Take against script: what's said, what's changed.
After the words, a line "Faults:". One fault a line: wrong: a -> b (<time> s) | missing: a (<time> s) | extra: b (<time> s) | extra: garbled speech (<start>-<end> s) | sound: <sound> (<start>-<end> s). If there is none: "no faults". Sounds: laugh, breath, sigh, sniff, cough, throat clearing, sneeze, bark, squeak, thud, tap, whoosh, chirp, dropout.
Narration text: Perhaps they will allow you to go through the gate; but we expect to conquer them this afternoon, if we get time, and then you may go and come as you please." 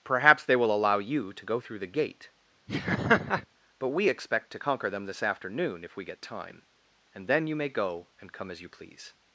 Perhaps they will allow you to go through the gate; but we expect to conquer them this afternoon, if we get time, and then you may go and come as you please."
Faults:
sound: laugh (2.7-3.5 s)